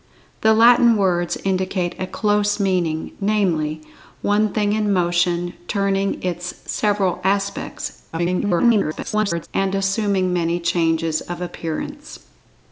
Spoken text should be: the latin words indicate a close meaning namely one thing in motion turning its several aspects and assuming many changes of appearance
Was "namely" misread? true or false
false